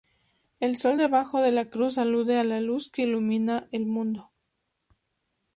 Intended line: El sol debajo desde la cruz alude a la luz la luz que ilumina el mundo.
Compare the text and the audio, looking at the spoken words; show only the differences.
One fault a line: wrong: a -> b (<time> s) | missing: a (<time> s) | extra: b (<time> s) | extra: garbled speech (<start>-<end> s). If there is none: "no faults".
wrong: desde -> de (1.4 s)
missing: la luz (2.9 s)